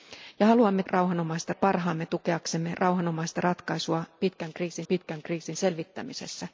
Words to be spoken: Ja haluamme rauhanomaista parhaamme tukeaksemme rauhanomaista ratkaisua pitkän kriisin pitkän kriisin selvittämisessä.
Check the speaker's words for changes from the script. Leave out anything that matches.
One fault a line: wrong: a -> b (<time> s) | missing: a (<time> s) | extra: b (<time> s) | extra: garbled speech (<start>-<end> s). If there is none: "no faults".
no faults